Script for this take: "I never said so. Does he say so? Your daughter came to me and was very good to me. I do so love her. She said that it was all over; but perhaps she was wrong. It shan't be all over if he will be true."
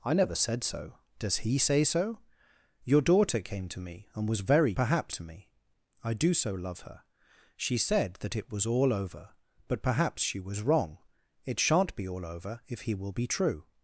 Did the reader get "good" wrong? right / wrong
wrong